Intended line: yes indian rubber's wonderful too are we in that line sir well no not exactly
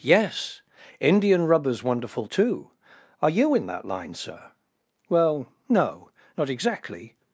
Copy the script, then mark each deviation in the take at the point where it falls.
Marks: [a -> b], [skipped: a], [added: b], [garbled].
yes indian rubber's wonderful too are [we -> you] in that line sir well no not exactly